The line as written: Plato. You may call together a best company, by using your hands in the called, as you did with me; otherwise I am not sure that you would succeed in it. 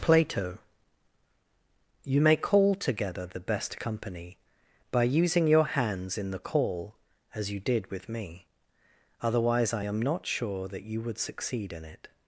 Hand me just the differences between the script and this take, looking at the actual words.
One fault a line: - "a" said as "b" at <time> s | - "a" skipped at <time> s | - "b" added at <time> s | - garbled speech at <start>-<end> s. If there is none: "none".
- "a" said as "the" at 3.3 s
- "called" said as "call" at 6.4 s